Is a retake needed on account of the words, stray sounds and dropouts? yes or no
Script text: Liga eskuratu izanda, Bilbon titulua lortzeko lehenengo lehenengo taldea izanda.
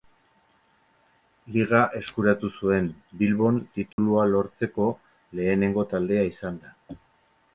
yes